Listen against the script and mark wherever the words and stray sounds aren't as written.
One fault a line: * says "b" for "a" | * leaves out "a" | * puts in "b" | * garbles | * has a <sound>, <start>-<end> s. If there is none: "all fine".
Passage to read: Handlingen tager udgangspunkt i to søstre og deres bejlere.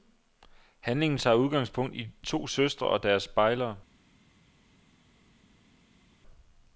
all fine